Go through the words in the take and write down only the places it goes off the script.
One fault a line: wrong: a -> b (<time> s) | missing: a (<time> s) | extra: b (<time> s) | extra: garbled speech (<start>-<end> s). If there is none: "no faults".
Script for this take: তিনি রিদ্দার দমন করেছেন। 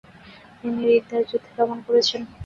extra: যুদ্ধে (1.3 s)